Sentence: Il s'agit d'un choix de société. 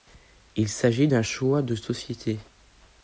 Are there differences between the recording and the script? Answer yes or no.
no